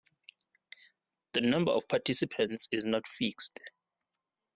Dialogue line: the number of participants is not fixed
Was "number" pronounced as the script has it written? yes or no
yes